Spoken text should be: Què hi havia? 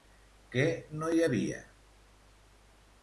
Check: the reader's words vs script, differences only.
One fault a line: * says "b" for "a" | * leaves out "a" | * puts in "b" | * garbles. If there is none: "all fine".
* puts in "no"